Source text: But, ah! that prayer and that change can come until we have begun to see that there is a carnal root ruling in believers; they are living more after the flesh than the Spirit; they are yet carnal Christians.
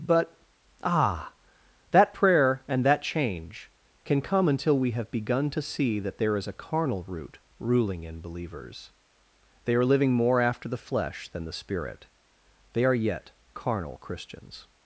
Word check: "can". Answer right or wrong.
right